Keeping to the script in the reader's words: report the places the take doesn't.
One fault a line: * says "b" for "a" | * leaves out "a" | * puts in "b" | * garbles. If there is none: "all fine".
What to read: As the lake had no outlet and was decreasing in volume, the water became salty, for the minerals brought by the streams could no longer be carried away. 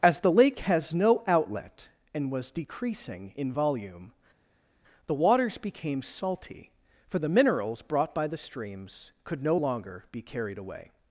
* says "has" for "had"
* says "waters" for "water"